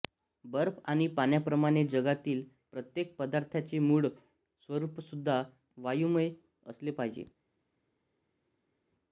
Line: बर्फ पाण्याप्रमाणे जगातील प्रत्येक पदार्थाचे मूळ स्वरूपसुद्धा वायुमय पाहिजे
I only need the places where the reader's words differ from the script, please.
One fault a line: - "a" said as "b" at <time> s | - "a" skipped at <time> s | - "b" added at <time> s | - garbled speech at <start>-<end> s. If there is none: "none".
- "आणि" added at 0.8 s
- "असले" added at 6.7 s